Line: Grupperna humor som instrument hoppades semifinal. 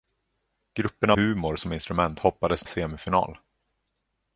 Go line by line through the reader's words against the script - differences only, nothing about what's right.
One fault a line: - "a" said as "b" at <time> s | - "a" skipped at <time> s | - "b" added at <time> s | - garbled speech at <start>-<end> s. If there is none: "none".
none